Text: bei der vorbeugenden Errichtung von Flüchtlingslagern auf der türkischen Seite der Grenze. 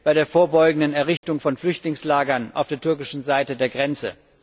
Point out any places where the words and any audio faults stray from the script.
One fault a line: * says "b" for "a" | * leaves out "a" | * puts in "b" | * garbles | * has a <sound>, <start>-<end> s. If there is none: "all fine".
* has a dropout, 1.2-1.2 s